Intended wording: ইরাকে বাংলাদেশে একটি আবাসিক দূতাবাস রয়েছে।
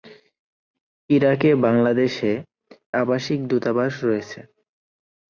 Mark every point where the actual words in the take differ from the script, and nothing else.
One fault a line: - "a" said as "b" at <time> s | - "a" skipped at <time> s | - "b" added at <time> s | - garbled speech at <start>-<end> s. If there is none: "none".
- "একটি" skipped at 2.3 s